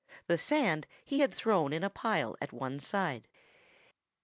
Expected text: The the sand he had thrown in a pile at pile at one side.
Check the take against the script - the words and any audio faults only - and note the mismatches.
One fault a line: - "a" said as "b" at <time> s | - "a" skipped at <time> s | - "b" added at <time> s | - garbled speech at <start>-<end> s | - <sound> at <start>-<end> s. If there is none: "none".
- "the" skipped at 0.4 s
- "pile at" skipped at 2.5 s